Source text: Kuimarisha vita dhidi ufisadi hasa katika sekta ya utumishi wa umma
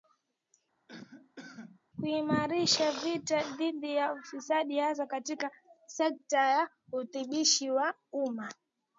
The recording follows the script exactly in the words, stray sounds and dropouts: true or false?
false